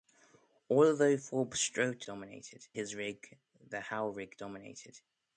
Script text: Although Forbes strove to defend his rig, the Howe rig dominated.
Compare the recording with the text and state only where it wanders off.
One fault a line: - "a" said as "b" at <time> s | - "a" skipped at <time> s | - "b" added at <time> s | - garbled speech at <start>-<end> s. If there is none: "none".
- "defend" said as "dominated" at 2.0 s